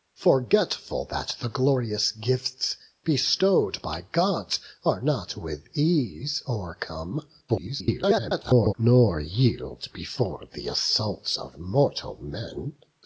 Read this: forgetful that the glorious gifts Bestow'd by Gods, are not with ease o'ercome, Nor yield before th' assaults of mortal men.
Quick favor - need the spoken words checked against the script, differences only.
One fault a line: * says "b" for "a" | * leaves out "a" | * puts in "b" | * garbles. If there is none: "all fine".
* garbles